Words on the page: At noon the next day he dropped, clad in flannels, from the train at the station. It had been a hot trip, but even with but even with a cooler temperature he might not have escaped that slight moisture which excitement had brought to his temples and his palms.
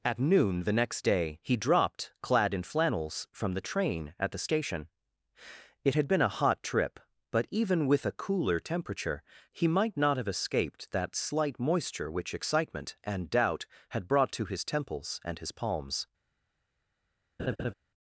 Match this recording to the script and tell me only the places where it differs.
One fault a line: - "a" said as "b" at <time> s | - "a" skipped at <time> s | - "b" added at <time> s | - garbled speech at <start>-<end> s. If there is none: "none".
- "but even with" skipped at 8.1 s
- "and doubt" added at 13.0 s